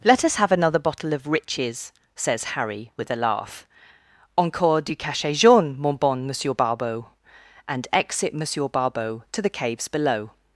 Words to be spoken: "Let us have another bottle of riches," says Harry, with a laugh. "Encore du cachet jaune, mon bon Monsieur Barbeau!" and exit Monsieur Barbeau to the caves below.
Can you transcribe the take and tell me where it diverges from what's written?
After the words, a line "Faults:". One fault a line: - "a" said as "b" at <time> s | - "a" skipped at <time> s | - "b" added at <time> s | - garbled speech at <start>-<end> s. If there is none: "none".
"Let us have another bottle of riches," says Harry, with a laugh. "Encore du cachet jaune, mon bon Monsieur Barbeau!" and exit Monsieur Barbeau to the caves below.
Faults:
none